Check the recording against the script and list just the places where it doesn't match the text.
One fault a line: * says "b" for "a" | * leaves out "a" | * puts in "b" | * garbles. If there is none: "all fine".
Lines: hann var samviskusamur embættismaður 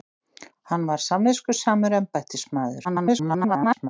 * garbles